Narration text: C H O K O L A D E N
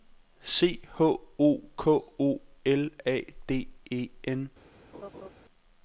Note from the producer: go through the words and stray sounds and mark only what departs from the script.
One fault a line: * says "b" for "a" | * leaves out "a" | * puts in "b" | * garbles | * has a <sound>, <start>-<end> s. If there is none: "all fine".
* has a laugh, 4.9-5.3 s